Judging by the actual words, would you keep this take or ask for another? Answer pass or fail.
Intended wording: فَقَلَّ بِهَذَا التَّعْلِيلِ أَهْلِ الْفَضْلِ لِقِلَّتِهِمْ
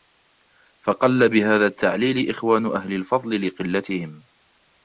fail